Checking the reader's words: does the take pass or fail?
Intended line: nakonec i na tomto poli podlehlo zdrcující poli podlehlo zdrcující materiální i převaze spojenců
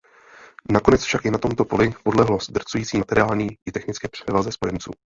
fail